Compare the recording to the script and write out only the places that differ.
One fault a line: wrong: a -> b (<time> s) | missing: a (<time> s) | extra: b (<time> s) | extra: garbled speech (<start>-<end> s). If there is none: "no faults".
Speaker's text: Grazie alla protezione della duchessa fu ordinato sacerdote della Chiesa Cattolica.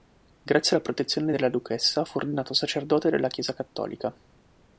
no faults